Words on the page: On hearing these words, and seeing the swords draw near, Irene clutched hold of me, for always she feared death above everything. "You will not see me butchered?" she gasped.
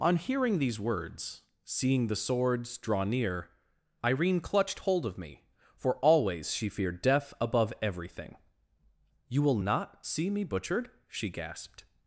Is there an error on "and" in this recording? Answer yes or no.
yes